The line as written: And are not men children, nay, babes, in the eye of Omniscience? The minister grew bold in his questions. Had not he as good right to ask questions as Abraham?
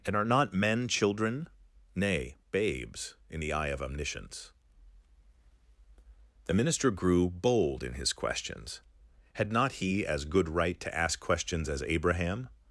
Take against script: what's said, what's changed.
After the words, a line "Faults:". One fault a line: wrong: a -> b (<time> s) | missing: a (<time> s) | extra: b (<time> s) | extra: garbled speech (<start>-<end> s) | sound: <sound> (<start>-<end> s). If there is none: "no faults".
And are not men children, nay, babes, in the eye of Omniscience? The minister grew bold in his questions. Had not he as good right to ask questions as Abraham?
Faults:
no faults